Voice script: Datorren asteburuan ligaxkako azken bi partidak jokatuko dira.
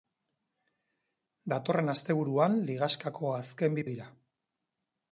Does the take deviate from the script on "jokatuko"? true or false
true